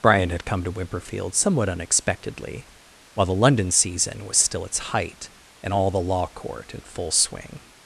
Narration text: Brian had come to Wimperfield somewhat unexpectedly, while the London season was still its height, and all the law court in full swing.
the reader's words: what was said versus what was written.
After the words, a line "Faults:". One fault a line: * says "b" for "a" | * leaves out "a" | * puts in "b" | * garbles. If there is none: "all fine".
Brian had come to Wimperfield somewhat unexpectedly, while the London season was still its height, and all the law court in full swing.
Faults:
all fine